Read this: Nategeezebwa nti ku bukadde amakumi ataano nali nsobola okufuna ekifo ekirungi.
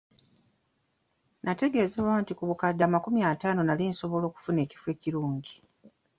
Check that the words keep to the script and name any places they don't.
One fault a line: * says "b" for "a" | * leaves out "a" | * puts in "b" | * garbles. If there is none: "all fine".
all fine